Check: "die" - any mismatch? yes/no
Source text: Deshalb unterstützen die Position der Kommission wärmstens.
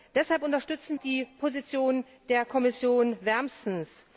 no